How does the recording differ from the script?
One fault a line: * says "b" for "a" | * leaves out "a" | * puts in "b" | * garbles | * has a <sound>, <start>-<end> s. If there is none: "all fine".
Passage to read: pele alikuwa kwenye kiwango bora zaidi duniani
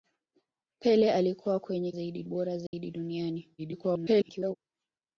* says "zaidi" for "kiwango"
* has a dropout, 2.7-2.7 s
* garbles